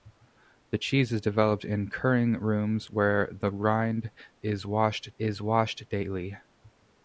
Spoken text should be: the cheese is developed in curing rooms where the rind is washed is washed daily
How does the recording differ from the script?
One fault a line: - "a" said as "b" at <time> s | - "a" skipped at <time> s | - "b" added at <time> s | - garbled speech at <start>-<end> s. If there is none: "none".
none